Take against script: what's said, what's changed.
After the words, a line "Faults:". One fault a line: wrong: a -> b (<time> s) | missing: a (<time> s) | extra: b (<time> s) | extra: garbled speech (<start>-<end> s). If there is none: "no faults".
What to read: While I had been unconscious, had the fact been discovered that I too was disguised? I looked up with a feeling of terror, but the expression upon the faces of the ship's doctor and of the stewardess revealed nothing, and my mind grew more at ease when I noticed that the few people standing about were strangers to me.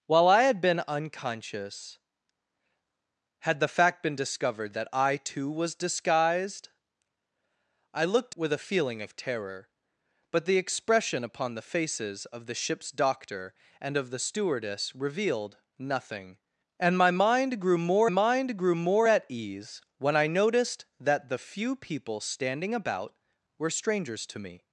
While I had been unconscious, had the fact been discovered that I too was disguised? I looked with a feeling of terror, but the expression upon the faces of the ship's doctor and of the stewardess revealed nothing, and my mind grew more mind grew more at ease when I noticed that the few people standing about were strangers to me.
Faults:
missing: up (8.3 s)
extra: mind grew more (18.1 s)